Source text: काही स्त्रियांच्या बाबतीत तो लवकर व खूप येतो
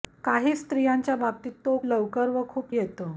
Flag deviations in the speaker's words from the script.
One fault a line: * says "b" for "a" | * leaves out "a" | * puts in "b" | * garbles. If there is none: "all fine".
all fine